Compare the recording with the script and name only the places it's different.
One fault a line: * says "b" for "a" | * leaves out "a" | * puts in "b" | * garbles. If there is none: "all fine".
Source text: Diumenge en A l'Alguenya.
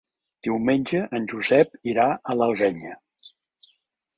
* puts in "Josep irà"